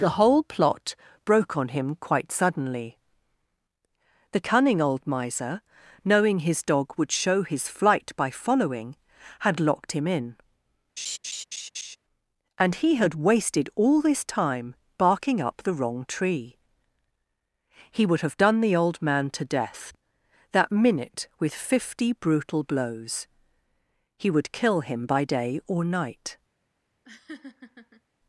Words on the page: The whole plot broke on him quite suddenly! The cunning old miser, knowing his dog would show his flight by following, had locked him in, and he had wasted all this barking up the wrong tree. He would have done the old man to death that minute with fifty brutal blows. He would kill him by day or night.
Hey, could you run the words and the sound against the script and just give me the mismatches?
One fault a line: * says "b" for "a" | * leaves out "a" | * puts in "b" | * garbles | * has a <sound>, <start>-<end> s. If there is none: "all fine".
* has a laugh, 11.0-12.0 s
* puts in "time"
* has a laugh, 27.0-28.0 s